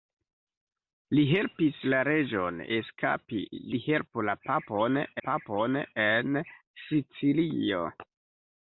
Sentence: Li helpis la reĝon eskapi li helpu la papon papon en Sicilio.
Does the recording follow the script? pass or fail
pass